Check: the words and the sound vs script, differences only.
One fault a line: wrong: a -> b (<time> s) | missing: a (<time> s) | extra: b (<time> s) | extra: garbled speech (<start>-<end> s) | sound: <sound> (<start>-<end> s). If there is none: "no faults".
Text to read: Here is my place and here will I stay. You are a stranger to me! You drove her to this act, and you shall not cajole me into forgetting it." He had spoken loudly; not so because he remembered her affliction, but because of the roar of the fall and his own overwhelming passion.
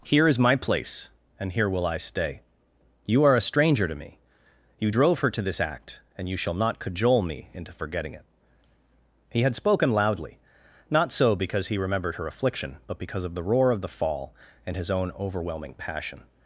no faults